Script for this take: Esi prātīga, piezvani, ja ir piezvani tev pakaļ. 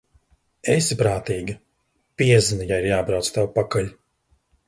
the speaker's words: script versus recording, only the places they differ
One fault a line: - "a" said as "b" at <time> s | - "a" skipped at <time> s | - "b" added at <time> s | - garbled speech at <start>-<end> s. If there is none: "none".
- "piezvani" said as "jābrauc" at 2.9 s